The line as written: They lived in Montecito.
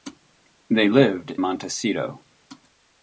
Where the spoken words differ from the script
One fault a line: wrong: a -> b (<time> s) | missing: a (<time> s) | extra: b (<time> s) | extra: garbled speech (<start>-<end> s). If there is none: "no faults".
missing: in (1.3 s)